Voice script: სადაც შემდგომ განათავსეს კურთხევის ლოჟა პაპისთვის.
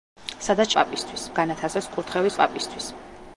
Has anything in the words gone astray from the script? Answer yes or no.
yes